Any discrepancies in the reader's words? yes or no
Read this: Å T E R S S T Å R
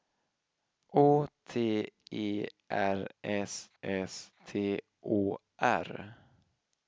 no